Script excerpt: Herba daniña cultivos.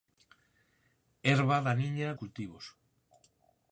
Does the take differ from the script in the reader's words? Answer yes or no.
no